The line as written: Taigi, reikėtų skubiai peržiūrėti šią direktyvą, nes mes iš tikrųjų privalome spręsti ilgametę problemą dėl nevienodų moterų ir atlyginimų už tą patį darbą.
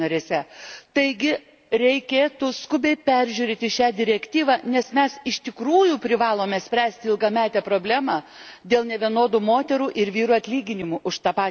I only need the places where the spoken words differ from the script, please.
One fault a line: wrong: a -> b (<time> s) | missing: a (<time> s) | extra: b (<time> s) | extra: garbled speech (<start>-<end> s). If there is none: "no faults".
extra: vyrų (10.2 s)